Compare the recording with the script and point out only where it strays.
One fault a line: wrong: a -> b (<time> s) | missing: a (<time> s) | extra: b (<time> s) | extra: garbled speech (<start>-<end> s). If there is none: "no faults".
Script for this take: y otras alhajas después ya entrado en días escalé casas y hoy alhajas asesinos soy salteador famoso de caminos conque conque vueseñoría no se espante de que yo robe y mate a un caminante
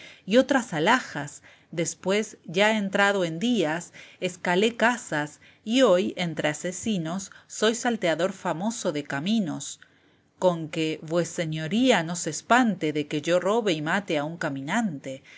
wrong: alhajas -> entre (6.2 s)
missing: conque (11.0 s)